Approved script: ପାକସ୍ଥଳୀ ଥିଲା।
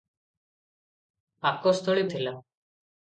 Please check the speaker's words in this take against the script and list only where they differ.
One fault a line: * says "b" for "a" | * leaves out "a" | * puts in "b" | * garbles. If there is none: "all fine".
all fine